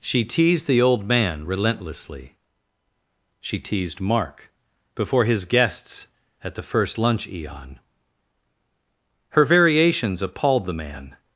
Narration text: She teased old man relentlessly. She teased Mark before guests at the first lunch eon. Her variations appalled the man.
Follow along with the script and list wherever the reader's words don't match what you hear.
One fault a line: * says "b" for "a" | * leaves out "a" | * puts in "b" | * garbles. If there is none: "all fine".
* puts in "the"
* puts in "his"